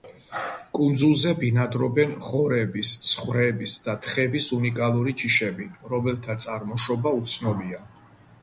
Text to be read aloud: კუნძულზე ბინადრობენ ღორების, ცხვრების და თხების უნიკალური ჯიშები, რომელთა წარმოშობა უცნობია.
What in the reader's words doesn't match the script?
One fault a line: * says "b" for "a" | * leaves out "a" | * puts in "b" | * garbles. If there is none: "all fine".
all fine